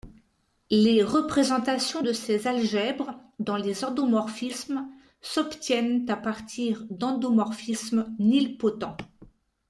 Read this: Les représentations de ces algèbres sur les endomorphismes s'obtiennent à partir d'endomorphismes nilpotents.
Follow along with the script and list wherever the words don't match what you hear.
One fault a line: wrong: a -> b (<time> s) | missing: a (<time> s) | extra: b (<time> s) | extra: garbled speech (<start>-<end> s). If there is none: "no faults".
wrong: sur -> dans (3.4 s)